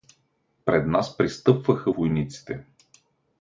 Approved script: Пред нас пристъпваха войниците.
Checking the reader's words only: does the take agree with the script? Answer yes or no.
yes